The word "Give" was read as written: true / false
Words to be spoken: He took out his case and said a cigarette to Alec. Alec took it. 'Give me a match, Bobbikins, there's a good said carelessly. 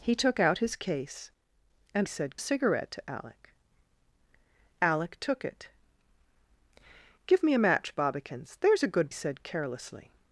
true